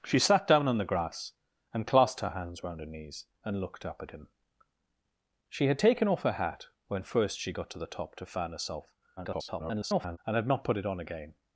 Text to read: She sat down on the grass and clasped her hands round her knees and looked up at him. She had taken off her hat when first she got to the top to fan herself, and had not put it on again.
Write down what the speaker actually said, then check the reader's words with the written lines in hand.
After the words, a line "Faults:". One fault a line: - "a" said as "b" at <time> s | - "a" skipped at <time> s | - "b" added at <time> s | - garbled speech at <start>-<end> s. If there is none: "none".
She sat down on the grass and clasped her hands round her knees and looked up at him. She had taken off her hat when first she got to the top to fan herself, [garbled] and had not put it on again.
Faults:
- garbled speech at 9.2-10.2 s